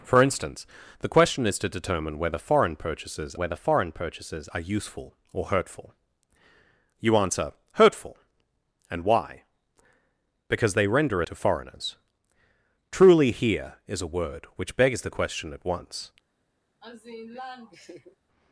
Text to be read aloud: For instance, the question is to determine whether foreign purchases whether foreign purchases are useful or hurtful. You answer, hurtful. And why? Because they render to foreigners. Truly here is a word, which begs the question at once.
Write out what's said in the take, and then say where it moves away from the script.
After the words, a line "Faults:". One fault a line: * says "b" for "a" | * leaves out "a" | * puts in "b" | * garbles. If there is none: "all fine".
For instance, the question is to determine whether foreign purchases whether foreign purchases are useful or hurtful. You answer, hurtful. And why? Because they render to foreigners. Truly here is a word, which begs the question at once.
Faults:
all fine